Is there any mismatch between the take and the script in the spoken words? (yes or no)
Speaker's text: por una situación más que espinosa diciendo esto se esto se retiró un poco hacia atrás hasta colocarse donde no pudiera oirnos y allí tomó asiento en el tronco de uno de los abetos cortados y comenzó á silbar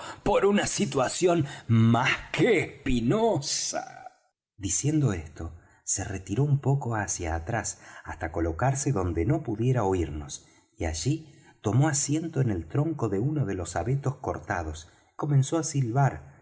yes